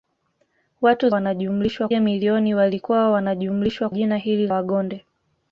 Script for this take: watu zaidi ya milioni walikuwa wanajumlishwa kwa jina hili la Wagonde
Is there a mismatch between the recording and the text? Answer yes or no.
yes